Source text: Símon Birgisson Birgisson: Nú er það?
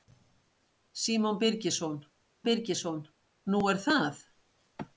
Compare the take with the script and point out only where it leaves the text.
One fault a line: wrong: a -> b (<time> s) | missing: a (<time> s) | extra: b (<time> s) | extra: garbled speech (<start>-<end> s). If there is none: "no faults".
no faults